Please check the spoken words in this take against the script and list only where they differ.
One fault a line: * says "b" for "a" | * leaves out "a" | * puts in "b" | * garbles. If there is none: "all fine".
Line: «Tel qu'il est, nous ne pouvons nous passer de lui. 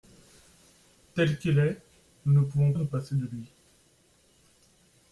all fine